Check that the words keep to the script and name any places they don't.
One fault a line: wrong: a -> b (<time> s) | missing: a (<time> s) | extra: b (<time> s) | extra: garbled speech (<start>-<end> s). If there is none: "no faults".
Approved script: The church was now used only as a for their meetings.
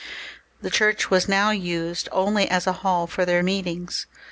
extra: hall (2.9 s)